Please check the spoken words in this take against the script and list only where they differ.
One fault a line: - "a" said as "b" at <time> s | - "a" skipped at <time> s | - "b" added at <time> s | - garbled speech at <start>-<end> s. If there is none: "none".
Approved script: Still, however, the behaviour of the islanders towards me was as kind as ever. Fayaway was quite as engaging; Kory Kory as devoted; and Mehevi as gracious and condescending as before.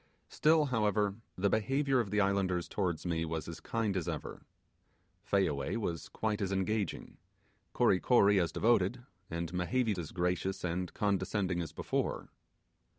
none